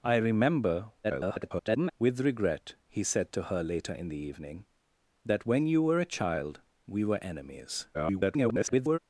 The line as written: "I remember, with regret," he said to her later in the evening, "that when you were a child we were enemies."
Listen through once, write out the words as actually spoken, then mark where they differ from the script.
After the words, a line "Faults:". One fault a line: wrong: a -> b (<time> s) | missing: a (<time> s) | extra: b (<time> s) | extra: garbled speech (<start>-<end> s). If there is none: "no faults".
"I remember, [garbled] with regret," he said to her later in the evening, "that when you were a child we were enemies." [garbled]
Faults:
extra: garbled speech (1.0-1.9 s)
extra: garbled speech (7.9-9.0 s)